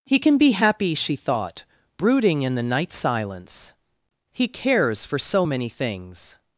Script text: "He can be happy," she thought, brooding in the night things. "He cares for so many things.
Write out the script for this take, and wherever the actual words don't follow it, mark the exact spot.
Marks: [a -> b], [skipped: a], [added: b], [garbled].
"He can be happy," she thought, brooding in the night [things. -> silence] "He cares for so many things.